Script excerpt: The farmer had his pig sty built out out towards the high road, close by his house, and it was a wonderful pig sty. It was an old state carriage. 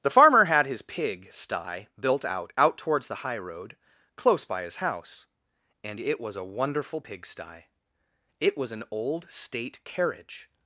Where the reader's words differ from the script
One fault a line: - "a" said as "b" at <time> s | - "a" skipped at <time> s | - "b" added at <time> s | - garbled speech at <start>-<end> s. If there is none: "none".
none